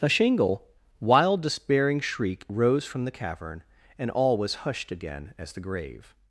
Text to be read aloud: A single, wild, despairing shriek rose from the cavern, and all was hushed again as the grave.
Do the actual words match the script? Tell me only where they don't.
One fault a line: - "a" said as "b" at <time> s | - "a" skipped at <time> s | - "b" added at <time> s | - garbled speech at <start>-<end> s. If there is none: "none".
- "single" said as "shingle" at 0.1 s